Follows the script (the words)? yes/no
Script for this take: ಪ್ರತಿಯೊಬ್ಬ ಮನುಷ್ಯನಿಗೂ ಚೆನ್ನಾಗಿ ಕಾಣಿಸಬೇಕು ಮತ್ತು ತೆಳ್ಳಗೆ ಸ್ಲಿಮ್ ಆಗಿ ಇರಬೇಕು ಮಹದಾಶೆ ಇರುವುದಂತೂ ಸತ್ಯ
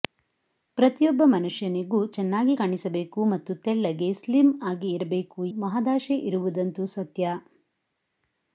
yes